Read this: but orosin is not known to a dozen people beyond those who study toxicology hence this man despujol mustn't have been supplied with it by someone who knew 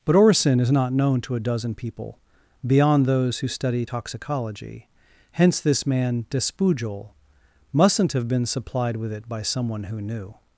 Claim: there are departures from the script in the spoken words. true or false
false